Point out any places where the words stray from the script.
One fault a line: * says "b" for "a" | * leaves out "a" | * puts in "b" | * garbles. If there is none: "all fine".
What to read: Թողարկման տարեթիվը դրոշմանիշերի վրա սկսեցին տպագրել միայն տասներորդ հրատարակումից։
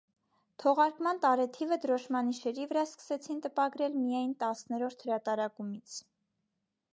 all fine